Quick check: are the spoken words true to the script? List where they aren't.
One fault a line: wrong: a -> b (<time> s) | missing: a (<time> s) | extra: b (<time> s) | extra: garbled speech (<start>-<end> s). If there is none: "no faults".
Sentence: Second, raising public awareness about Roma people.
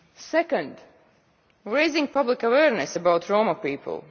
no faults